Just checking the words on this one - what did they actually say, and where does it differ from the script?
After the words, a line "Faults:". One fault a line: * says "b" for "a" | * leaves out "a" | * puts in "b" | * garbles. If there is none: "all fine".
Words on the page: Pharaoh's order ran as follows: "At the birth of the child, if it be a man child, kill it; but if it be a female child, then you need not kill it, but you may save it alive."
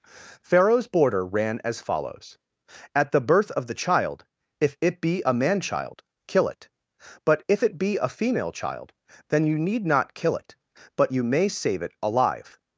Pharaoh's border ran as follows: "At the birth of the child, if it be a man child, kill it; but if it be a female child, then you need not kill it, but you may save it alive."
Faults:
* says "border" for "order"